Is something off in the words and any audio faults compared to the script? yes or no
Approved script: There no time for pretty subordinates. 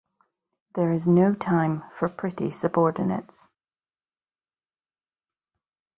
yes